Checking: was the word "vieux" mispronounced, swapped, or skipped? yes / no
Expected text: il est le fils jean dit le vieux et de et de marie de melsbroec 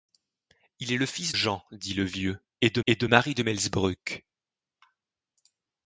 no